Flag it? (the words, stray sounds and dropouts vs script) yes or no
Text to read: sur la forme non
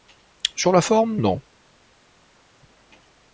no